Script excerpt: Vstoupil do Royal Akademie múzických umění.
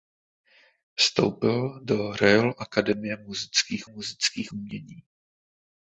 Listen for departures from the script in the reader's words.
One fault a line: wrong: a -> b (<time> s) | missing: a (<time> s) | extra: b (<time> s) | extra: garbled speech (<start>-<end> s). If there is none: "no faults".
extra: múzických (3.9 s)